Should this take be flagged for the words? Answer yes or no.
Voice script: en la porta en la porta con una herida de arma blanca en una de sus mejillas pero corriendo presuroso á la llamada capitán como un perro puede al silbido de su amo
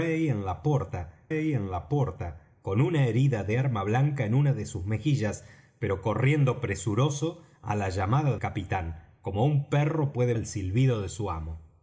no